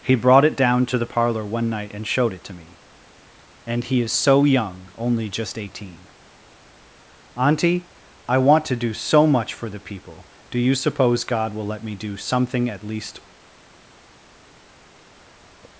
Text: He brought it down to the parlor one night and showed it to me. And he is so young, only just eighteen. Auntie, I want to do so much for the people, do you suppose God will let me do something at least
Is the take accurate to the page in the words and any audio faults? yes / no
yes